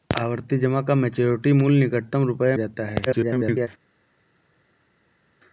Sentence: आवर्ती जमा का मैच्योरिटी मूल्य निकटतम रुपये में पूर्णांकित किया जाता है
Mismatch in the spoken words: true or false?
true